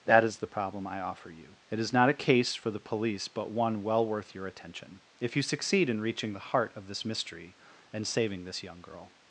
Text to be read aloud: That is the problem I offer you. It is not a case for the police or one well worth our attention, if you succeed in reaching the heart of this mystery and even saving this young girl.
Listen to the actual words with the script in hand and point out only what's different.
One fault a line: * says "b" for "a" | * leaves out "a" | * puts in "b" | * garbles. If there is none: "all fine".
* says "but" for "or"
* says "your" for "our"
* leaves out "even"